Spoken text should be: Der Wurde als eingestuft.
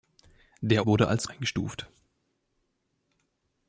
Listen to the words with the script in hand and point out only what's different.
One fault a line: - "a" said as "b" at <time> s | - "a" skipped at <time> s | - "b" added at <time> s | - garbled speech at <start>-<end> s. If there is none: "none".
none